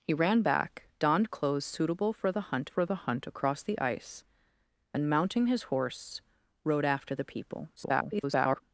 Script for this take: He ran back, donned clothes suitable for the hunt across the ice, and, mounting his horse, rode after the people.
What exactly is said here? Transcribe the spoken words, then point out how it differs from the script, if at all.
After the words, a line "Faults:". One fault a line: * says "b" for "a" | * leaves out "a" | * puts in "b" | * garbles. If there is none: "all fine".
He ran back, donned clothes suitable for the hunt for the hunt across the ice, and, mounting his horse, rode after the people. [garbled]
Faults:
* puts in "for the hunt"
* garbles